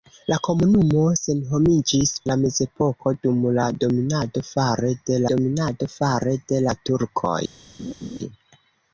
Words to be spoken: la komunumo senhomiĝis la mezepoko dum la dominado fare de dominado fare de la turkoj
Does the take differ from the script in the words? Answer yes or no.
no